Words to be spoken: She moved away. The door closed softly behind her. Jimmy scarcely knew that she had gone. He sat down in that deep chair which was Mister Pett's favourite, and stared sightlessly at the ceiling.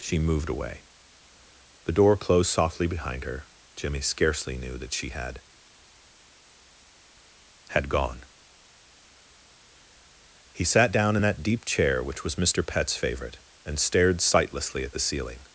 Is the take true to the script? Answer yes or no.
no